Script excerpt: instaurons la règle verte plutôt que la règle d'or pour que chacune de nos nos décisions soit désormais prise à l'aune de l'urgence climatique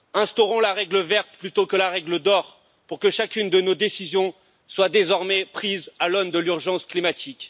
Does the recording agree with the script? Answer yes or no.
no